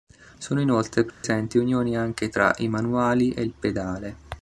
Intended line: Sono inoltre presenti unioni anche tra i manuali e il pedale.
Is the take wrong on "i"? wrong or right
right